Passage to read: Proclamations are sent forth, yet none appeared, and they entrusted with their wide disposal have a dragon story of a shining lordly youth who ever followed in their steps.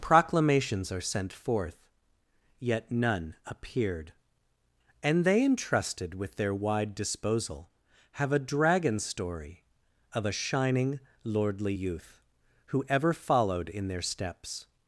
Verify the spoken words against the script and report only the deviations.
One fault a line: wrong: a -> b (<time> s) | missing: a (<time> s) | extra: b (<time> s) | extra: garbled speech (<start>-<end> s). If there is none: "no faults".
no faults